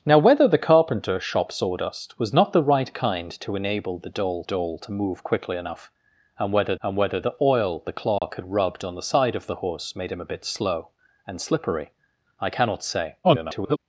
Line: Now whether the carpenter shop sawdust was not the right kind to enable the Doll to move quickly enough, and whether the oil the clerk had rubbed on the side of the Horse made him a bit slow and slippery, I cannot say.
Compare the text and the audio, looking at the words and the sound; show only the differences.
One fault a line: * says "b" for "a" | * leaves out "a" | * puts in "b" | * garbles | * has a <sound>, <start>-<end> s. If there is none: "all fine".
* puts in "Doll"
* puts in "and whether"
* has a dropout, 8.2-8.2 s
* garbles